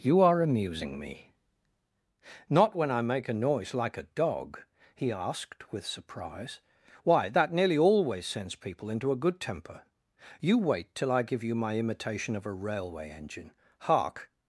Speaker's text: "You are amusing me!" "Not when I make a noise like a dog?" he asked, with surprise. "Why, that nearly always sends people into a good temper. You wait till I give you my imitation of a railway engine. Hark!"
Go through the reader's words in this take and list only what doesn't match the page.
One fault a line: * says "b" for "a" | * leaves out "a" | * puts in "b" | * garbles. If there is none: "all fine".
all fine